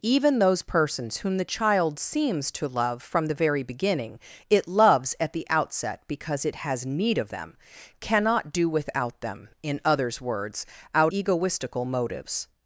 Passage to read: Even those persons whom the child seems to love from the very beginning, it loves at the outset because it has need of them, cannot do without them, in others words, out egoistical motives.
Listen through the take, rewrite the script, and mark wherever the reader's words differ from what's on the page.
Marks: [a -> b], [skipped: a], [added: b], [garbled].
Even those persons whom the child seems to love from the very beginning, it loves at the outset because it has need of them, cannot do without them, in others words, out egoistical motives.